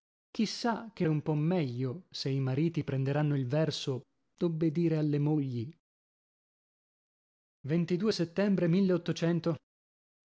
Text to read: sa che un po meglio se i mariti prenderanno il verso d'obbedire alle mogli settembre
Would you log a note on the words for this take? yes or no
no